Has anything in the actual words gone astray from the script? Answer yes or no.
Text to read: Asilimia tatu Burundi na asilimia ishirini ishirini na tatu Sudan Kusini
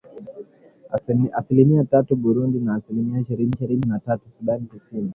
no